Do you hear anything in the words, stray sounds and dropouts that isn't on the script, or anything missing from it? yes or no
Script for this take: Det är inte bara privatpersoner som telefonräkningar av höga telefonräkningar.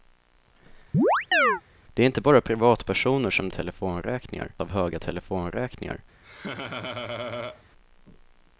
yes